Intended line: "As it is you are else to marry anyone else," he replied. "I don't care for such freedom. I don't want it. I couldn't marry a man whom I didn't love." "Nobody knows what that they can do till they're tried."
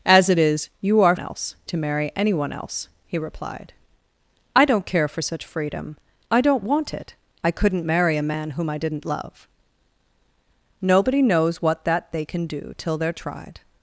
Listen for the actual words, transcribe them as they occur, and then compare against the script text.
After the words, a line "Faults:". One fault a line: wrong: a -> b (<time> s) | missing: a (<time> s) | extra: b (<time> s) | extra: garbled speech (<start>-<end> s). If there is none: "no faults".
"As it is you are else to marry anyone else," he replied. "I don't care for such freedom. I don't want it. I couldn't marry a man whom I didn't love." "Nobody knows what that they can do till they're tried."
Faults:
no faults